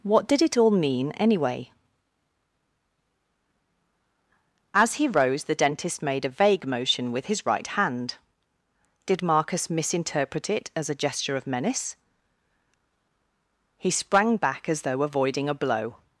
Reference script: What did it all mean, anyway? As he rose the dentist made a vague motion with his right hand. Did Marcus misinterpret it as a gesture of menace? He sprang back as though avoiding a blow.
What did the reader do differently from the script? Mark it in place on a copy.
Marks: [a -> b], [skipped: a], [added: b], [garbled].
What did it all mean, anyway? As he rose the dentist made a vague motion with his right hand. Did Marcus misinterpret it as a gesture of menace? He sprang back as though avoiding a blow.